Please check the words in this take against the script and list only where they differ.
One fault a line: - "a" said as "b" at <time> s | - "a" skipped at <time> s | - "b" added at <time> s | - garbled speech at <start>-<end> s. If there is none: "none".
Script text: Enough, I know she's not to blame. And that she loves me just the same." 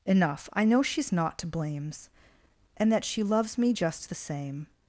- "blame" said as "blames" at 1.5 s